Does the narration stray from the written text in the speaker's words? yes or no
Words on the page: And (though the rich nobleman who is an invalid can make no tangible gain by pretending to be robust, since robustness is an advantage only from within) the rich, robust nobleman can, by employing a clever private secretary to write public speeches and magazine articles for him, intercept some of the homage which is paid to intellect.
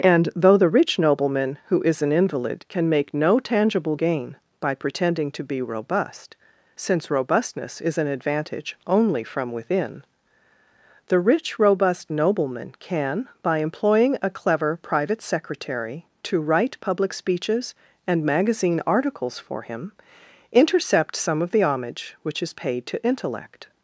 no